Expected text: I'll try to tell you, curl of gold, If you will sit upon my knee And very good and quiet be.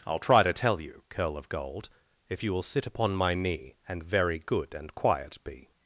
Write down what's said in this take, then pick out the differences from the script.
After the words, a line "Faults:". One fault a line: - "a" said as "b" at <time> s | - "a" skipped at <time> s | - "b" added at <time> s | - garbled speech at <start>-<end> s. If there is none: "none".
I'll try to tell you, curl of gold, If you will sit upon my knee And very good and quiet be.
Faults:
none